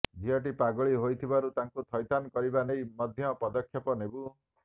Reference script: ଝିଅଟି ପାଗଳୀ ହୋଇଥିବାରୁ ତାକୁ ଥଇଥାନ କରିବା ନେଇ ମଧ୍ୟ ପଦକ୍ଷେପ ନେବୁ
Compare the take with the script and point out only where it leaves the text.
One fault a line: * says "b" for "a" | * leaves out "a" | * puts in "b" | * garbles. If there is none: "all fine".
all fine